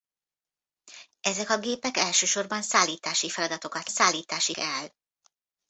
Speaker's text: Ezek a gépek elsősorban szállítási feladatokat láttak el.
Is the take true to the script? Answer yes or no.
no